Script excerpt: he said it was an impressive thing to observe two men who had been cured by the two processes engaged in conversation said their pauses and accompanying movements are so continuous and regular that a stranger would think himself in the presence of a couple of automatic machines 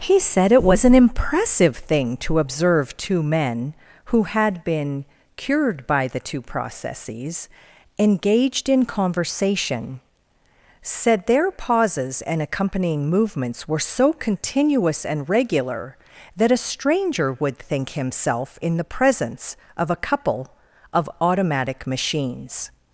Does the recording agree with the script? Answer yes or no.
no